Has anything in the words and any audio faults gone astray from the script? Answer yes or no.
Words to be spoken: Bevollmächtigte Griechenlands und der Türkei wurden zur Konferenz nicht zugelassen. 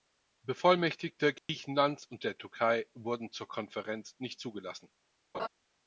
yes